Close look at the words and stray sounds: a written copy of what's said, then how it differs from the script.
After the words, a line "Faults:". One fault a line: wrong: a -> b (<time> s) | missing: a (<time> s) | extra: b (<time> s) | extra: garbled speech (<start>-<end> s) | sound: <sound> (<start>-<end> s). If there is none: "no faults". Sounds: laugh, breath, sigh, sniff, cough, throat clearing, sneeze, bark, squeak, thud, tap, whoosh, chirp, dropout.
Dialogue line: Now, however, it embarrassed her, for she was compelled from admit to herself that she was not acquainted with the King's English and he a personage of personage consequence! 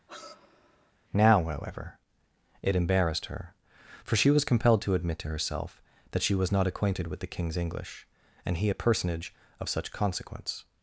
Now, however, it embarrassed her, for she was compelled to admit to herself that she was not acquainted with the King's English and he a personage of such consequence!
Faults:
sound: sigh (0.1-0.9 s)
wrong: from -> to (4.8 s)
wrong: personage -> such (9.7 s)